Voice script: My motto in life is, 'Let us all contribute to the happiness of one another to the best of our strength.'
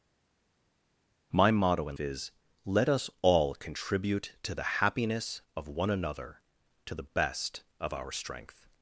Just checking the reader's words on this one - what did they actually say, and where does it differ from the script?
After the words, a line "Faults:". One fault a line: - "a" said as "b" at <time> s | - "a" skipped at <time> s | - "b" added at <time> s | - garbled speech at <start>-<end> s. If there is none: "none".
My motto in is, 'Let us all contribute to the happiness of one another to the best of our strength.'
Faults:
- "life" skipped at 2.0 s